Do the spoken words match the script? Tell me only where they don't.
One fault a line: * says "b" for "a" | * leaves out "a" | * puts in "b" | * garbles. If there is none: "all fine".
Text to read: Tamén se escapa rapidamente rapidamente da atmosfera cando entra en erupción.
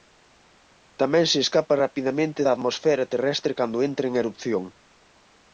* leaves out "rapidamente"
* puts in "terrestre"